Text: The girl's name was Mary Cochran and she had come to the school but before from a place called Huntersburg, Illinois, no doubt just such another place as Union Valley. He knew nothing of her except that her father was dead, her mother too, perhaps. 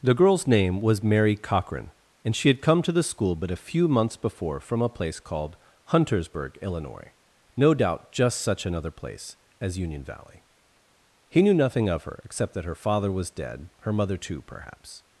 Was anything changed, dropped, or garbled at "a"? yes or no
no